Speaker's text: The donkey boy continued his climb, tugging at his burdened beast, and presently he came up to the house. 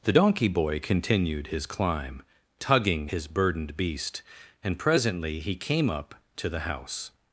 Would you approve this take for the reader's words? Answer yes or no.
no